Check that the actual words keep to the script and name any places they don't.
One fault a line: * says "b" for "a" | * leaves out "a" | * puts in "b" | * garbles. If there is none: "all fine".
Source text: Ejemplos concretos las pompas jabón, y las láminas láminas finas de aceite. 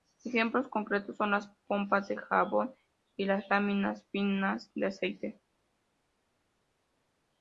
* puts in "son"
* puts in "de"
* leaves out "láminas"